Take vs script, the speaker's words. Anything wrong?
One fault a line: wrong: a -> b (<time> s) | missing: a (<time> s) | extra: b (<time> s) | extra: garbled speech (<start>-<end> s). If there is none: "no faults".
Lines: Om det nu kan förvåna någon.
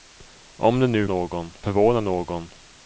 wrong: kan -> någon (1.0 s)